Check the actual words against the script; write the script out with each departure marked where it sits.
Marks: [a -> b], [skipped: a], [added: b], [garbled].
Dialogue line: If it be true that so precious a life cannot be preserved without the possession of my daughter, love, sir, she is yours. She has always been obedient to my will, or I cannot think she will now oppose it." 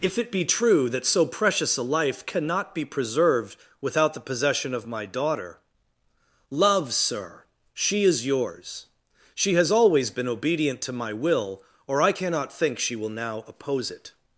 If it be true that so precious a life cannot be preserved without the possession of my daughter, love, sir, she is yours. She has always been obedient to my will, or I cannot think she will now oppose it."